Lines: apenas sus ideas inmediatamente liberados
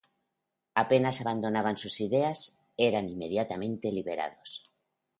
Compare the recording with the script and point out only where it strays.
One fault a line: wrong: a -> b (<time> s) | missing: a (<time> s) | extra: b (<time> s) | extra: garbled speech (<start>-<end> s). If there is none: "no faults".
extra: abandonaban (1.2 s)
extra: eran (2.8 s)